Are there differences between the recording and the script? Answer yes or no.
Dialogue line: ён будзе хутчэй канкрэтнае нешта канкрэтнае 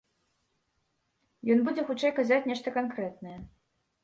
yes